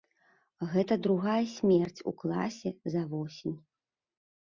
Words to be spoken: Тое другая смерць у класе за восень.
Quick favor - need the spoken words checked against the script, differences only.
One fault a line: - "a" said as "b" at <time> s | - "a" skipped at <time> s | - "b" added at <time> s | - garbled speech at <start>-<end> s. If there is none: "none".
- "Тое" said as "Гэта" at 0.7 s